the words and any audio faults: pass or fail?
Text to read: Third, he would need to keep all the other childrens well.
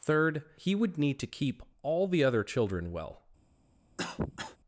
fail